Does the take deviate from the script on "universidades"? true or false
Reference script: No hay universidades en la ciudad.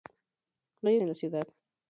true